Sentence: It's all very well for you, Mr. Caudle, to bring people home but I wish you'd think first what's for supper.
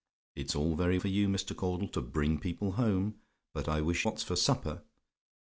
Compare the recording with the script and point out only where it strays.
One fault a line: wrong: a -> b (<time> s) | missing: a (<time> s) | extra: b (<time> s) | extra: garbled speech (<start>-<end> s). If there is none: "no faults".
missing: well (1.0 s)
missing: you'd think first (4.1 s)